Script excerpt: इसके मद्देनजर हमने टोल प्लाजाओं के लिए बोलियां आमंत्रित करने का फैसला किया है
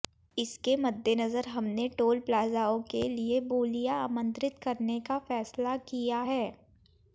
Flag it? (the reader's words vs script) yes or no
no